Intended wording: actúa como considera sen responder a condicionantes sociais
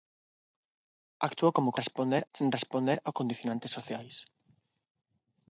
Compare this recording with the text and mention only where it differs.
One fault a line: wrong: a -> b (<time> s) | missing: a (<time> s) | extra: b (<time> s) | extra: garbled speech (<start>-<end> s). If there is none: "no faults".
wrong: considera -> responder (1.8 s)